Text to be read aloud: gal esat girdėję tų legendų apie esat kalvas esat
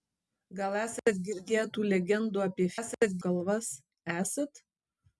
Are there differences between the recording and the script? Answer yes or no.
no